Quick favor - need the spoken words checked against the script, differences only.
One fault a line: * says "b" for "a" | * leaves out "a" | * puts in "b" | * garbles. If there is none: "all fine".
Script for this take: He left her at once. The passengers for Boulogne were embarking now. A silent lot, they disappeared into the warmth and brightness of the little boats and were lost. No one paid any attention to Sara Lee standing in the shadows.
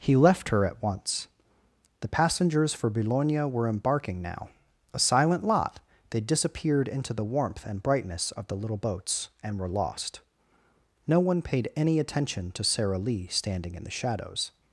all fine